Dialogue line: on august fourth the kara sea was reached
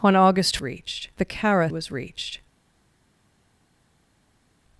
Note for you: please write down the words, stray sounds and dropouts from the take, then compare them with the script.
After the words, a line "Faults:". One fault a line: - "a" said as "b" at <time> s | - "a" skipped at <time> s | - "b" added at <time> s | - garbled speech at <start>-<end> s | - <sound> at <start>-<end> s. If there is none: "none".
on august reached the kara was reached
Faults:
- "fourth" said as "reached" at 0.6 s
- "sea" skipped at 1.7 s